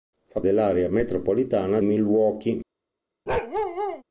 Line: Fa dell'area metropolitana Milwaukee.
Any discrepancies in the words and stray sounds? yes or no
yes